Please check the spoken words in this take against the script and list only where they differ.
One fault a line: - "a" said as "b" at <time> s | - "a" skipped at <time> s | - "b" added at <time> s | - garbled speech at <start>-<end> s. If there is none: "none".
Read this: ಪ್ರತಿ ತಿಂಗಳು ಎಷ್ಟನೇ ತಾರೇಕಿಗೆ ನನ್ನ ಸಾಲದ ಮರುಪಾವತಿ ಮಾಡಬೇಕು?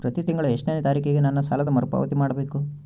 none